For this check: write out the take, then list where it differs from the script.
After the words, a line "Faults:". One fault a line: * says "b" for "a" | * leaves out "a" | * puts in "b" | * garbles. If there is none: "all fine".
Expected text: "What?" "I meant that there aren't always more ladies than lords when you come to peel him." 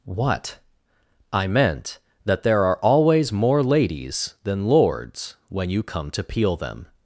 "What?" "I meant that there are always more ladies than lords when you come to peel them."
Faults:
* says "are" for "aren't"
* says "them" for "him"